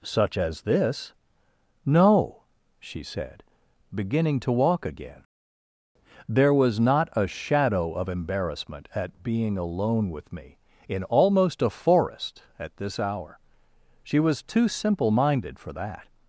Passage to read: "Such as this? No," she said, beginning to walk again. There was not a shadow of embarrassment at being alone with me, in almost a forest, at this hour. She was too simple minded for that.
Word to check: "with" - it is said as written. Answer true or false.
true